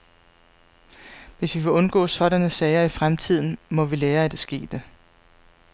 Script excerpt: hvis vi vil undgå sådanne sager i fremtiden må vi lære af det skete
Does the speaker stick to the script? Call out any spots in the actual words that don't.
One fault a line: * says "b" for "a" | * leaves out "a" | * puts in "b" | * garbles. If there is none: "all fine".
all fine